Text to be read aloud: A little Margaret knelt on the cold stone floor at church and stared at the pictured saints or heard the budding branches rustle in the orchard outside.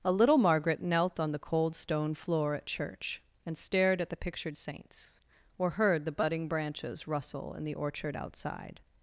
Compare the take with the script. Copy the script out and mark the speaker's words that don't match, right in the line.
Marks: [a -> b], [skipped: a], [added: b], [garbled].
A little Margaret knelt on the cold stone floor at church and stared at the pictured saints or heard the budding branches rustle in the orchard outside.